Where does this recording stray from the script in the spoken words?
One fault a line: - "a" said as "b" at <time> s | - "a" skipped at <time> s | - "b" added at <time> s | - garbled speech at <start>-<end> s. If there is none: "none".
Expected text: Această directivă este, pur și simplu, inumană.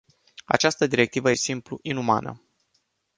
- "este pur și" skipped at 1.3 s